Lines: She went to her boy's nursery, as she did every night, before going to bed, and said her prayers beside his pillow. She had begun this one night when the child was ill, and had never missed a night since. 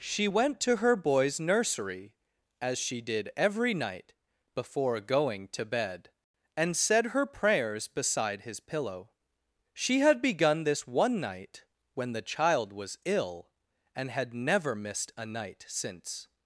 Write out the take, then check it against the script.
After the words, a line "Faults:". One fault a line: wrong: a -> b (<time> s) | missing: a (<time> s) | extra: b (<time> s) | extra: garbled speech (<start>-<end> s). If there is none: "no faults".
She went to her boy's nursery, as she did every night, before going to bed, and said her prayers beside his pillow. She had begun this one night when the child was ill, and had never missed a night since.
Faults:
no faults